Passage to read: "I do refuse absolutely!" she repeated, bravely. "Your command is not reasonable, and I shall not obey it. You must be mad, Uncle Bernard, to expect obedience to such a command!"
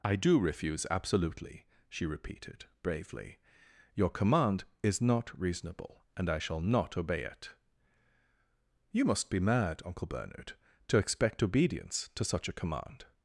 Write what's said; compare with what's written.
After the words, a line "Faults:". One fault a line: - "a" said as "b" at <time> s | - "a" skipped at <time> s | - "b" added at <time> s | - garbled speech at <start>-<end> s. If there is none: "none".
"I do refuse absolutely!" she repeated, bravely. "Your command is not reasonable, and I shall not obey it. You must be mad, Uncle Bernard, to expect obedience to such a command!"
Faults:
none